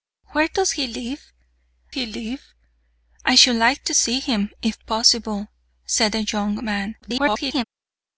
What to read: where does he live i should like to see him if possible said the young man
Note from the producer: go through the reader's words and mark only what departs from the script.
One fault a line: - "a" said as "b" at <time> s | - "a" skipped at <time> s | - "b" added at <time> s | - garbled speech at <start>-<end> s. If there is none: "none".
- "he live" added at 1.9 s
- garbled speech at 7.0-7.6 s